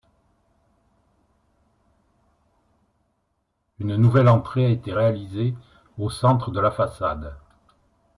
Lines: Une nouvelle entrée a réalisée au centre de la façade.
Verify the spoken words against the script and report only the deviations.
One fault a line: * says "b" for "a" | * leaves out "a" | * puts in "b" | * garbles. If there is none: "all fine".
* puts in "été"